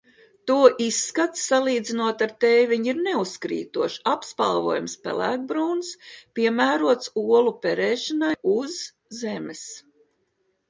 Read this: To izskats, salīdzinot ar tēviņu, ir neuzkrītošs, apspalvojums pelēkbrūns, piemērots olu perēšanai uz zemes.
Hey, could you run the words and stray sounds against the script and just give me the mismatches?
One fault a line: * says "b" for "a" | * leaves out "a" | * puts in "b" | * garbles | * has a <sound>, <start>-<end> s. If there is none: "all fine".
all fine